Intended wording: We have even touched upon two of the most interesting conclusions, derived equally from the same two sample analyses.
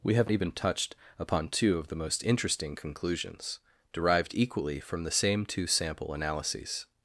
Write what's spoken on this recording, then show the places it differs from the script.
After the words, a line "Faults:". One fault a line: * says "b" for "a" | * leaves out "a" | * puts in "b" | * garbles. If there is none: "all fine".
We have even touched upon two of the most interesting conclusions, derived equally from the same two sample analyses.
Faults:
all fine